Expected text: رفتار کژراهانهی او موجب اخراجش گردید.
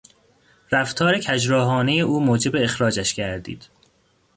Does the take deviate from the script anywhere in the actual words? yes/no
no